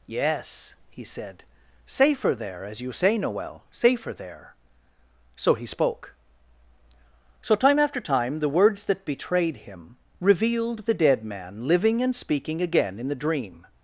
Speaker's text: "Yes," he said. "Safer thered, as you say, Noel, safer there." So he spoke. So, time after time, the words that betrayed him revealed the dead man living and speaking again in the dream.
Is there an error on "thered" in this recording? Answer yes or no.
yes